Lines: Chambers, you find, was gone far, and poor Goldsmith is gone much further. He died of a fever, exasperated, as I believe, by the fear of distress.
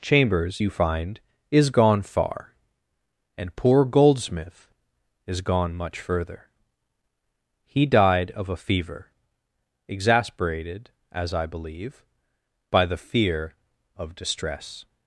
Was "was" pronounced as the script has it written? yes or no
no